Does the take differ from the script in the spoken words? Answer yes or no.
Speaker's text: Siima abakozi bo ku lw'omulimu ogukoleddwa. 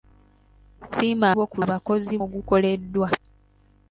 yes